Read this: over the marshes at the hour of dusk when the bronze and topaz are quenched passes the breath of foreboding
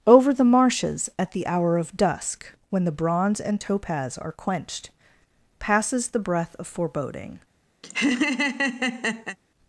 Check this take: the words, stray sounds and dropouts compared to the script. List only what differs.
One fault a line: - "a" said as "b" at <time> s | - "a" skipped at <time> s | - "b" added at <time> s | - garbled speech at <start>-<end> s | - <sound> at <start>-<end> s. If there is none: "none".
- laugh at 7.8-9.4 s